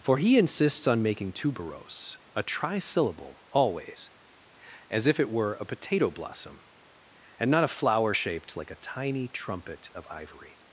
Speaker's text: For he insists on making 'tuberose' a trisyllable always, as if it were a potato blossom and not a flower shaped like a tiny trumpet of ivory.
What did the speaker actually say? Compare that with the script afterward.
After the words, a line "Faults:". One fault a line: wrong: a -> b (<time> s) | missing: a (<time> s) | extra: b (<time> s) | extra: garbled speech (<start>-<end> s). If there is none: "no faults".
For he insists on making 'tuberose' a trisyllable always, as if it were a potato blossom and not a flower shaped like a tiny trumpet of ivory.
Faults:
no faults